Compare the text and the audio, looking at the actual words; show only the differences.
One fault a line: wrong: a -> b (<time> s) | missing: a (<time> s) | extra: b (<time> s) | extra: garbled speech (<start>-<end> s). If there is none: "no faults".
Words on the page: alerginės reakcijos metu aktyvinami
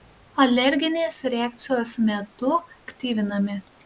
no faults